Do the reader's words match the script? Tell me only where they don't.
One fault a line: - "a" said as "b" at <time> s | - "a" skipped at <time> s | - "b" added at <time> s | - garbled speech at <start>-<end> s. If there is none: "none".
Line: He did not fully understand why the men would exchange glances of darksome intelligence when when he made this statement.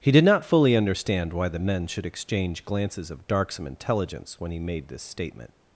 - "would" said as "should" at 1.9 s
- "when" skipped at 4.5 s